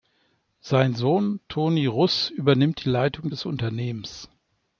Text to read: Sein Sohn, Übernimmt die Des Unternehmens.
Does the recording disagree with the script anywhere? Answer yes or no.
yes